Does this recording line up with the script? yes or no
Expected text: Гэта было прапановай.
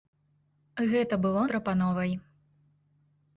yes